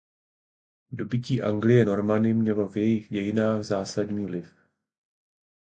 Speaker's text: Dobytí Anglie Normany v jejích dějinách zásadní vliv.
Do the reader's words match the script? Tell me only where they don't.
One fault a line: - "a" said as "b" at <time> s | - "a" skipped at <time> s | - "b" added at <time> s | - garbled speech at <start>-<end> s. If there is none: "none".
- "mělo" added at 2.3 s